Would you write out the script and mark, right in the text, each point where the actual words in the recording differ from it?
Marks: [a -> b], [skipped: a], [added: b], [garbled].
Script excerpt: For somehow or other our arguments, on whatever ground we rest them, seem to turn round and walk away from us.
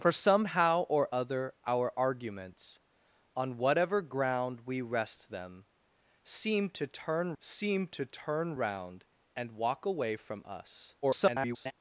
For somehow or other our arguments, on whatever ground we rest them, seem to turn [added: seem to turn] round and walk away from us. [garbled]